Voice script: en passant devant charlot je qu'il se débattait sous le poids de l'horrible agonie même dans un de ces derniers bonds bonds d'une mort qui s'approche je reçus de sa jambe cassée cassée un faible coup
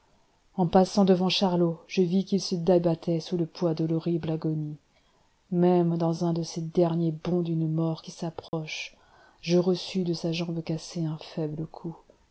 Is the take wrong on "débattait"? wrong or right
right